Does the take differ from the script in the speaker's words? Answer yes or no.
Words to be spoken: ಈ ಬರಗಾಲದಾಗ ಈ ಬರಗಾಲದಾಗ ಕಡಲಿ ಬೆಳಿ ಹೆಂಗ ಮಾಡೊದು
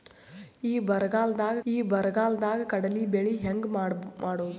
no